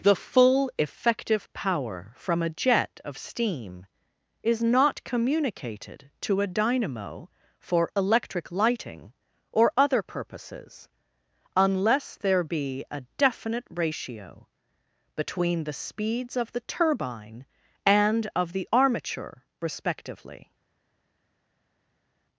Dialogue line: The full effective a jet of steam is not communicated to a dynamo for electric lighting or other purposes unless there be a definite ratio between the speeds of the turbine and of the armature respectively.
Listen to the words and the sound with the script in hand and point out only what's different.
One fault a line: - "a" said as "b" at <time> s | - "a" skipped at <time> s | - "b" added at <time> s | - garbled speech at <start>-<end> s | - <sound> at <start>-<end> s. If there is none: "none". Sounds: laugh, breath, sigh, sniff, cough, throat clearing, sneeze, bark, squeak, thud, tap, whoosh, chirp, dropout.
- "power from" added at 1.5 s